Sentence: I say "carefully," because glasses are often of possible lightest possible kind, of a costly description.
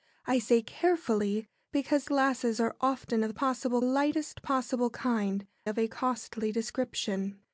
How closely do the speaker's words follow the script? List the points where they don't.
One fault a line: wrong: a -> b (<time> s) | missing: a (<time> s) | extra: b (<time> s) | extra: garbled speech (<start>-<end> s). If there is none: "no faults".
no faults